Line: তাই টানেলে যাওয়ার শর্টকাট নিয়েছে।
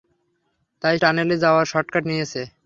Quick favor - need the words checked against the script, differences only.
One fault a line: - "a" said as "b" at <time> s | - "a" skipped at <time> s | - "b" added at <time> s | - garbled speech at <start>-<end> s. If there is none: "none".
none